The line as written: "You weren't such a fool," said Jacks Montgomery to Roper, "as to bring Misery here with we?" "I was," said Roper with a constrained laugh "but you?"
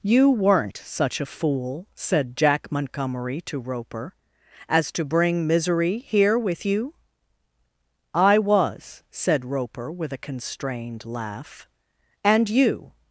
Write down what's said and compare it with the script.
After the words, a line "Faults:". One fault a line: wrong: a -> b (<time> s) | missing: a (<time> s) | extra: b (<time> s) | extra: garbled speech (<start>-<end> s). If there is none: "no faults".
"You weren't such a fool," said Jack Montgomery to Roper, "as to bring Misery here with you?" "I was," said Roper with a constrained laugh "and you?"
Faults:
wrong: Jacks -> Jack (2.4 s)
wrong: we -> you (6.6 s)
wrong: but -> and (12.2 s)